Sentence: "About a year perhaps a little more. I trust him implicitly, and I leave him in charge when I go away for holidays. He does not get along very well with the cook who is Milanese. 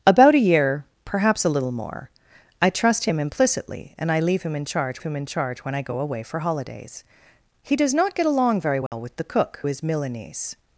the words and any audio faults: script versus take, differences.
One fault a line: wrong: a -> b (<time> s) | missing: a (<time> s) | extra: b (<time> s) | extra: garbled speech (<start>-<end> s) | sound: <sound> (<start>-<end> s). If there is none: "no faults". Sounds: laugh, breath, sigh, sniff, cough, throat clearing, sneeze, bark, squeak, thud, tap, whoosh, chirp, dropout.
extra: him in charge (5.0 s)
sound: dropout (8.9-8.9 s)
missing: who (9.6 s)